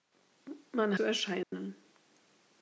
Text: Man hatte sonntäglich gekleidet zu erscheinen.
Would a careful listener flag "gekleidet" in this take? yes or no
yes